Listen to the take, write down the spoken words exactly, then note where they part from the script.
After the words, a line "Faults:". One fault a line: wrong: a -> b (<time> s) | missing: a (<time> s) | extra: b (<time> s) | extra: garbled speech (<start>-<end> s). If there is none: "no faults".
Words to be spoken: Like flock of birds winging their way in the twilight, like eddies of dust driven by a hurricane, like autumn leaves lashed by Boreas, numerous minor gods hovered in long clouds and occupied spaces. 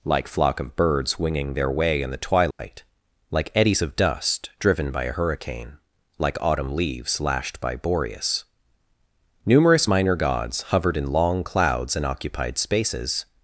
Like flock of birds winging their way in the twilight, like eddies of dust driven by a hurricane, like autumn leaves lashed by Boreas, numerous minor gods hovered in long clouds and occupied spaces.
Faults:
no faults